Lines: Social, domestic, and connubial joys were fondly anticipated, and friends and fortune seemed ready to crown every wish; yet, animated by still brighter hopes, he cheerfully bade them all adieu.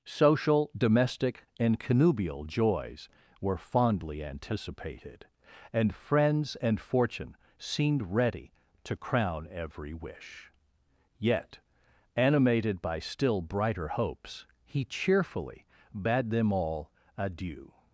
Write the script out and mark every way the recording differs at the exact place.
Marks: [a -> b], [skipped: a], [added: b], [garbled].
Social, domestic, and connubial joys were fondly anticipated, and friends and fortune seemed ready to crown every wish; yet, animated by still brighter hopes, he cheerfully bade them all adieu.